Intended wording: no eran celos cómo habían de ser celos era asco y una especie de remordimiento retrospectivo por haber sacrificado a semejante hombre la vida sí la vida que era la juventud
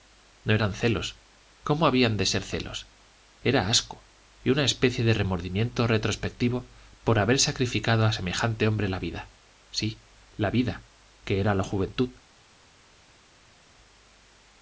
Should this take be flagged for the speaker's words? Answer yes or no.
no